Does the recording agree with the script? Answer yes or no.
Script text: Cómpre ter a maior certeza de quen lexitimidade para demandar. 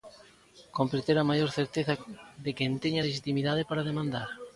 no